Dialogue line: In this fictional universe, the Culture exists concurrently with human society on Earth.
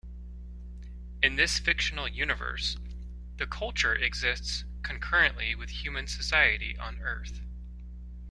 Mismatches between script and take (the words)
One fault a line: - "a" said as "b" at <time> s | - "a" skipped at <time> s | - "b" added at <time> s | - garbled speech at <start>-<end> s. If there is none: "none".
none